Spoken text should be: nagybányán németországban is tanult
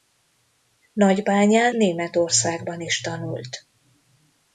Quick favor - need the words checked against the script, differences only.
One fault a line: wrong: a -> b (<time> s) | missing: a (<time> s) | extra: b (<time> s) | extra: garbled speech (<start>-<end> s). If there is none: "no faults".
no faults